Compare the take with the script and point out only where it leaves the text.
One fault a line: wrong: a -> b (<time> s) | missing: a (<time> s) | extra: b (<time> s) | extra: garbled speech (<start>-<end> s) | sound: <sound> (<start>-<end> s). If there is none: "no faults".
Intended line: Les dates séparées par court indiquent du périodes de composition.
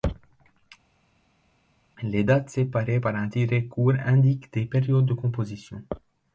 extra: un tiret (3.1 s)
wrong: du -> des (4.5 s)